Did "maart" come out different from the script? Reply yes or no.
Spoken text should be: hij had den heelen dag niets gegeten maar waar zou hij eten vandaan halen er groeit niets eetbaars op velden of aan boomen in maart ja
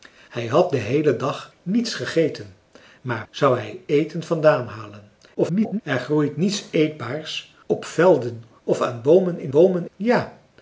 yes